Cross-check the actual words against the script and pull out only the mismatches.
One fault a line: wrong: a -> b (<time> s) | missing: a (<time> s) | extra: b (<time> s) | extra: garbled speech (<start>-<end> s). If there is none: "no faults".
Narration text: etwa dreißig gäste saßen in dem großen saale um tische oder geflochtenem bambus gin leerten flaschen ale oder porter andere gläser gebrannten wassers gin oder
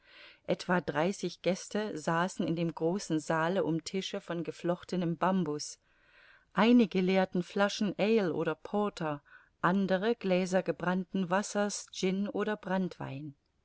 wrong: oder -> von (4.2 s)
wrong: gin -> einige (6.5 s)